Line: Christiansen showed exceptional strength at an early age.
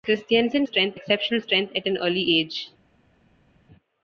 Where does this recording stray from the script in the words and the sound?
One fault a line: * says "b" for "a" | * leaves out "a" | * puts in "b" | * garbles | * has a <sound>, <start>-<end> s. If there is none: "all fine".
* says "strength" for "showed"